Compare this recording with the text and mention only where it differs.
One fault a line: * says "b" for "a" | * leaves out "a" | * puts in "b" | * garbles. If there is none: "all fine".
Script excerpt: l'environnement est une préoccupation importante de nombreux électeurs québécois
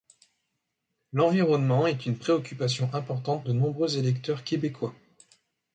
all fine